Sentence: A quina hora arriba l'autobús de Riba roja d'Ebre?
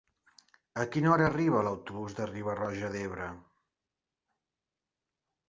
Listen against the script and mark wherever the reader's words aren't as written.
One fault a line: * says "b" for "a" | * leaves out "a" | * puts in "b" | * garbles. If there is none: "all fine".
all fine